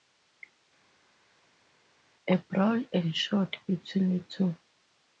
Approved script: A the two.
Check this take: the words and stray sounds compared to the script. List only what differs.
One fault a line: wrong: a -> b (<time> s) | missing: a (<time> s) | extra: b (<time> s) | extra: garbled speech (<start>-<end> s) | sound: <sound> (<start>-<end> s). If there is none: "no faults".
extra: brawl ensued between (2.4 s)